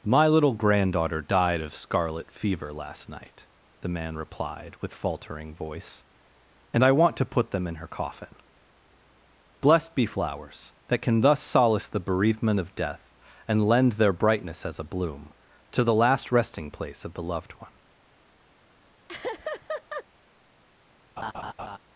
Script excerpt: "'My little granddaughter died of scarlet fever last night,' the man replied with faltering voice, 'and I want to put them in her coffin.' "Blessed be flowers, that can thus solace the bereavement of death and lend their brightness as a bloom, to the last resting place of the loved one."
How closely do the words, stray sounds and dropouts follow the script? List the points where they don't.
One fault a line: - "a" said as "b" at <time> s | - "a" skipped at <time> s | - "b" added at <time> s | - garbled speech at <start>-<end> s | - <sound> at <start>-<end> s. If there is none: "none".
- laugh at 19.1-20.0 s
- laugh at 21.2-21.8 s